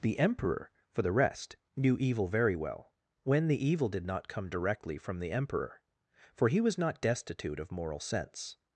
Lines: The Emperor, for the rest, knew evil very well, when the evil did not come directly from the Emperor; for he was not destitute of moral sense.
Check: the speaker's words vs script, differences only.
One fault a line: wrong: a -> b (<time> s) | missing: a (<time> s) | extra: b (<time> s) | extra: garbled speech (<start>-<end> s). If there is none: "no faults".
no faults